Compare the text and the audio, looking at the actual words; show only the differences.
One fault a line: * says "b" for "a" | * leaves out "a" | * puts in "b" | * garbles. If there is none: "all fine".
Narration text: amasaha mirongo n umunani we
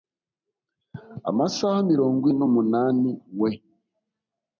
all fine